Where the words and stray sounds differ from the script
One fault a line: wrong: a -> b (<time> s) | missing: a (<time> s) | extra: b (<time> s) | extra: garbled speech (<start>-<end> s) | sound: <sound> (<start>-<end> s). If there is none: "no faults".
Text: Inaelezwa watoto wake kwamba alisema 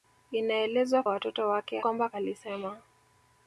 no faults